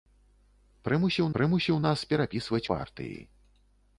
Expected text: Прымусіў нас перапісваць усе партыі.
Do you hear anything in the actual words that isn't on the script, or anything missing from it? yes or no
yes